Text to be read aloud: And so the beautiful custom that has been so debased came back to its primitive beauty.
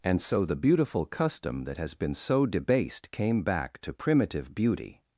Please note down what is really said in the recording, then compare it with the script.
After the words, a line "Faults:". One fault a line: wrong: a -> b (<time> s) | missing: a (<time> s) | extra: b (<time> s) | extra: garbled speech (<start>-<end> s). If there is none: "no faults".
And so the beautiful custom that has been so debased came back to primitive beauty.
Faults:
missing: its (3.9 s)